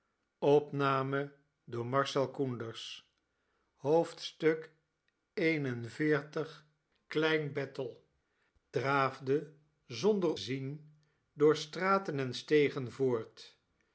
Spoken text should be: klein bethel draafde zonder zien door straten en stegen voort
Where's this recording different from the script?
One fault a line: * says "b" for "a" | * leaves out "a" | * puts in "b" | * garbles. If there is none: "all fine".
all fine